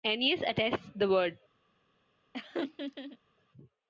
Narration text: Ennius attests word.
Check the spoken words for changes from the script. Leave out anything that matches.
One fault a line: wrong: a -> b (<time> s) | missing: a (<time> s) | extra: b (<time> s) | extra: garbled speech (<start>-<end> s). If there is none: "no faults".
extra: the (0.9 s)